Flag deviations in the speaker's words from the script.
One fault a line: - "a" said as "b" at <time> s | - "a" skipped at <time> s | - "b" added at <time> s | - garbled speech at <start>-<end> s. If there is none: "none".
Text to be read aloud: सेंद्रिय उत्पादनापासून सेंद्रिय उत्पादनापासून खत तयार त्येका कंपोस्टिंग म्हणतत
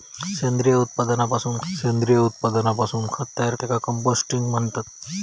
none